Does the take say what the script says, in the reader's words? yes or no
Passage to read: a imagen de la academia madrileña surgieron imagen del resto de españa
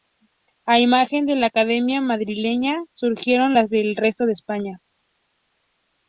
no